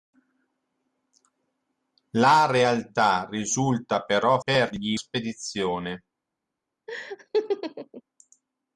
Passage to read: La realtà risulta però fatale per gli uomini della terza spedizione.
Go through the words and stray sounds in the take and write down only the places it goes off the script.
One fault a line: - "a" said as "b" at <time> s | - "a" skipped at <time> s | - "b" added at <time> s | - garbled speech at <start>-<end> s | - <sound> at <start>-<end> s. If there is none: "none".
- "fatale" skipped at 4.4 s
- "uomini della terza" skipped at 5.0 s
- laugh at 6.9-8.0 s